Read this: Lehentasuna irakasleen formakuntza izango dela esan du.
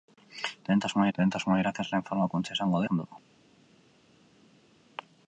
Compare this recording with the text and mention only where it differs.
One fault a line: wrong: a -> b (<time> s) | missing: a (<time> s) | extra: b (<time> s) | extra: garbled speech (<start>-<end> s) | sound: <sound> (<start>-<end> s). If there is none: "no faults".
extra: lehentasuna (1.2 s)
missing: dela (2.8 s)